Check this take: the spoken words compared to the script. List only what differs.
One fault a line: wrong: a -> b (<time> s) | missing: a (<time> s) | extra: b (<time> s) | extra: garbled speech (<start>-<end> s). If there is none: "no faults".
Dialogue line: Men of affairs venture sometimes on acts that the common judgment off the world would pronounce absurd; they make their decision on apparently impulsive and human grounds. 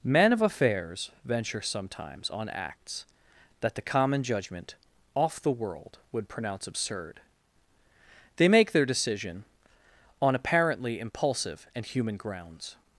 no faults